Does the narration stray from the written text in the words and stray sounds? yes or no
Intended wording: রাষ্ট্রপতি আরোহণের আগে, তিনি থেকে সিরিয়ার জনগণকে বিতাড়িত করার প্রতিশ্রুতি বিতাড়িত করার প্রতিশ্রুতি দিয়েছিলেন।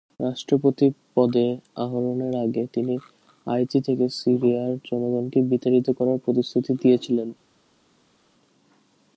yes